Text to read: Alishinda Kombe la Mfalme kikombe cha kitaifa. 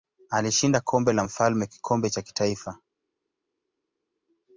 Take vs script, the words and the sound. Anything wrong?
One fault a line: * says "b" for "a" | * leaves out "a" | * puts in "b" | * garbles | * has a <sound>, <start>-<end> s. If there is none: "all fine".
all fine